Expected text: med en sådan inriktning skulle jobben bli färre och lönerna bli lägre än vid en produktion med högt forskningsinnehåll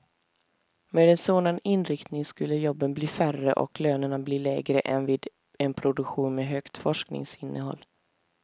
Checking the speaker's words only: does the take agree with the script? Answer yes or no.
yes